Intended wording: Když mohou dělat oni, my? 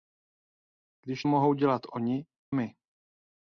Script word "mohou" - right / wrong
right